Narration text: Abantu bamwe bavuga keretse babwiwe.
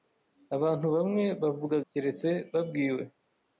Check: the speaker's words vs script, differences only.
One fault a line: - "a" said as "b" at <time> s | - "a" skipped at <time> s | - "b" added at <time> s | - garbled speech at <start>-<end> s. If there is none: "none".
none